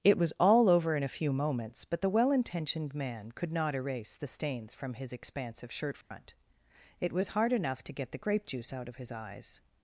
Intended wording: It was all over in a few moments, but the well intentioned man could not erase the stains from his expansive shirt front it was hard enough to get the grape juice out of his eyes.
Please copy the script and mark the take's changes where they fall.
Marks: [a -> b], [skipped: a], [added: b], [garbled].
It was all over in a few moments, but the well intentioned man could not erase the stains from his expansive shirt front it was hard enough to get the grape juice out of his eyes.